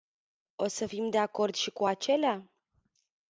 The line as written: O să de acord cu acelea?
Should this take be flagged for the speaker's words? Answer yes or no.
yes